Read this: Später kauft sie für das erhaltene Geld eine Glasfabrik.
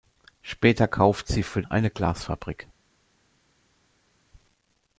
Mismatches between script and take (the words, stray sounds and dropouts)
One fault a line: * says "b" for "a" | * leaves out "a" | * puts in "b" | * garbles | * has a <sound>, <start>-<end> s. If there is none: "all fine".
* leaves out "das erhaltene Geld"